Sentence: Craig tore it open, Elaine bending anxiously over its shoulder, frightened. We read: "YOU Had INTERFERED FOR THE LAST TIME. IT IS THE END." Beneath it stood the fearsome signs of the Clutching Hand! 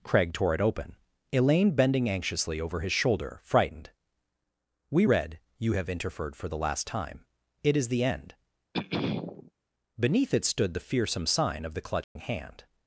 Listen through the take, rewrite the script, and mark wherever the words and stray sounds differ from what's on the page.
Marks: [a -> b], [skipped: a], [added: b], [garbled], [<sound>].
Craig tore it open, Elaine bending anxiously over [its -> his] shoulder, frightened. We read: "YOU [Had -> HAVE] INTERFERED FOR THE LAST TIME. IT IS THE END." [throat clearing] Beneath it stood the fearsome [signs -> sign] of the Clutching [dropout] Hand!